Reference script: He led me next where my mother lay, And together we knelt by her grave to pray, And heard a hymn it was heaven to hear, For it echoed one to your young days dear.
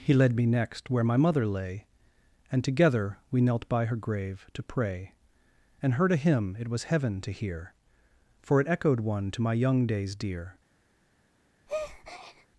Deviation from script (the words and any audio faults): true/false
true